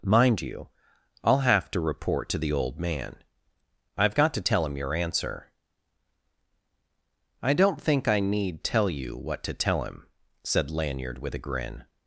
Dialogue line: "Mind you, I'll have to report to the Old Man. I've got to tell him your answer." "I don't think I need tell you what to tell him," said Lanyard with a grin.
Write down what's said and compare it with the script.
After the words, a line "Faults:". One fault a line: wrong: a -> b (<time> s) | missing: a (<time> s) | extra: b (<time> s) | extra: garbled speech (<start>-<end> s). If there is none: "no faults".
"Mind you, I'll have to report to the Old Man. I've got to tell him your answer." "I don't think I need tell you what to tell him," said Lanyard with a grin.
Faults:
no faults